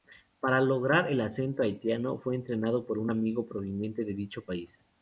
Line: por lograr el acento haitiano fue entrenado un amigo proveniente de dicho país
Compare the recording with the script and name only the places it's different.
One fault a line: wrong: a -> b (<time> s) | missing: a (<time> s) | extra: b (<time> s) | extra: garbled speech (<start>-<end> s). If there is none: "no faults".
wrong: por -> para (0.4 s)
extra: por (2.9 s)